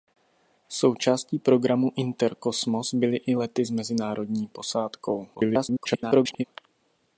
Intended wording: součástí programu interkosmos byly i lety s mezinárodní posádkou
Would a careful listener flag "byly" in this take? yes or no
no